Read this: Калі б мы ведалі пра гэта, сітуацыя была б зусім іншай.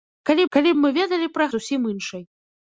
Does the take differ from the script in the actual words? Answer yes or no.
yes